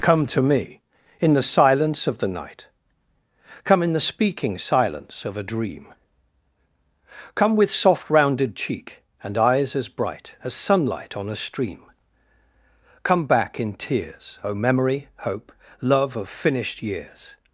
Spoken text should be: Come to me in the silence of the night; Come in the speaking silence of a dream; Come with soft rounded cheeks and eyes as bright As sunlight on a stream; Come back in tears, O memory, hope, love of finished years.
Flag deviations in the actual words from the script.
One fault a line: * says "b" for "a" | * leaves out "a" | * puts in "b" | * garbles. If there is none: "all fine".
* says "cheek" for "cheeks"